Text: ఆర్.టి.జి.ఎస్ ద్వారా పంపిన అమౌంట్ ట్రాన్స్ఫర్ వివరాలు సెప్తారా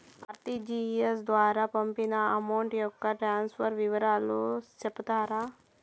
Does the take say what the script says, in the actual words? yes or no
no